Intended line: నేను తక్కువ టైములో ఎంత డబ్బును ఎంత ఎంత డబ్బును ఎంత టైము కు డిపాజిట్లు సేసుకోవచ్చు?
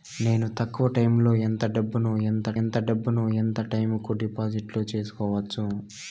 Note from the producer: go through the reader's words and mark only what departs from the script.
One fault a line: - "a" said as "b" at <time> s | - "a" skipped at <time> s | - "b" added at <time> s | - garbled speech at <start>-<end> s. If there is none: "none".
none